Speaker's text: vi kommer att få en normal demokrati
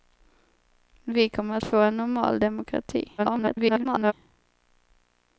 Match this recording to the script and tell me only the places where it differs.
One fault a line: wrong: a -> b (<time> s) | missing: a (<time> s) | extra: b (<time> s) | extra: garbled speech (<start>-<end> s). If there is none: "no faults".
extra: garbled speech (3.2-4.1 s)